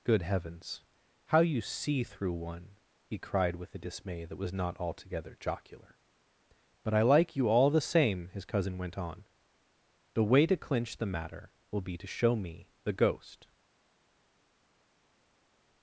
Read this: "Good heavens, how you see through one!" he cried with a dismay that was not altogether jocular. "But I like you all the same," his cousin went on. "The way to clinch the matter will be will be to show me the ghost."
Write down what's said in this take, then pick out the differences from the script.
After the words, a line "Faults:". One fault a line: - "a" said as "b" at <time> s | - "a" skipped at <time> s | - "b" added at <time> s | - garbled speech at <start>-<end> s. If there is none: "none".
"Good heavens, how you see through one!" he cried with a dismay that was not altogether jocular. "But I like you all the same," his cousin went on. "The way to clinch the matter will be to show me the ghost."
Faults:
- "will be" skipped at 12.0 s